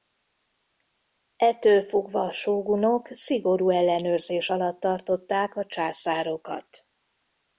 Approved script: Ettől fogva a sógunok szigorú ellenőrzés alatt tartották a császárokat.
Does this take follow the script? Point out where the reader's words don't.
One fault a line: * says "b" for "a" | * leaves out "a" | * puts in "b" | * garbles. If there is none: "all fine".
all fine